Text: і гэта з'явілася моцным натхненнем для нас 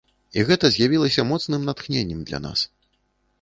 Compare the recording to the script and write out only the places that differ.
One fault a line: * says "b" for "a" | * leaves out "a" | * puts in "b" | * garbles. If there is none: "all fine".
all fine